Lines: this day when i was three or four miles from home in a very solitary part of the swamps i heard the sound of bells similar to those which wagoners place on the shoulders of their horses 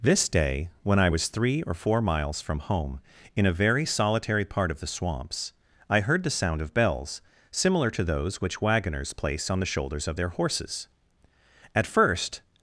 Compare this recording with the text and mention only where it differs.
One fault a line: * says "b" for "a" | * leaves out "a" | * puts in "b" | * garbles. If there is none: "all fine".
* puts in "at first"